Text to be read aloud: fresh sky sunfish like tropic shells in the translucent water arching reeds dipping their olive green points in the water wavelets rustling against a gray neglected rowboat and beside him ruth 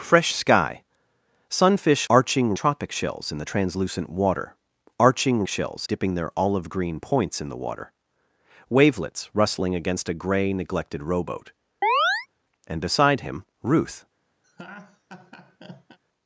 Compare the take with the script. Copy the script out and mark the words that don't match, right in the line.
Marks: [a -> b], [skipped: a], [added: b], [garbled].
fresh sky sunfish [like -> arching] tropic shells in the translucent water arching [reeds -> shells] dipping their olive green points in the water wavelets rustling against a gray neglected rowboat and beside him ruth